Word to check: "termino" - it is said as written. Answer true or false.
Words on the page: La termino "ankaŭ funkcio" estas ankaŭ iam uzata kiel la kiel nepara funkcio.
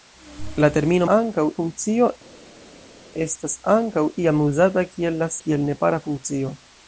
true